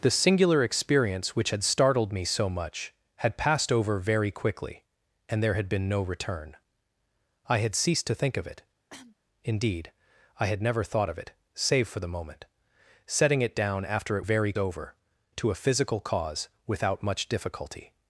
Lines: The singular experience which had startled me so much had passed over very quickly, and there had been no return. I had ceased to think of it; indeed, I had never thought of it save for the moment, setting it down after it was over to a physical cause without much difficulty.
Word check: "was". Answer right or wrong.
wrong